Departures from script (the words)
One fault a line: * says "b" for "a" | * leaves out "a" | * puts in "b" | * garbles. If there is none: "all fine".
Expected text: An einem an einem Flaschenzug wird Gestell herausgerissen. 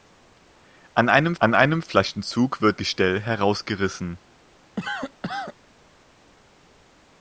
all fine